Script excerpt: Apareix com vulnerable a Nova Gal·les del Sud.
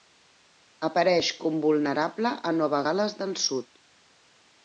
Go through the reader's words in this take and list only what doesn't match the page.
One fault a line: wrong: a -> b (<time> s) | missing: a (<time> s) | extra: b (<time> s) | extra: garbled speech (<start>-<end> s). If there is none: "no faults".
no faults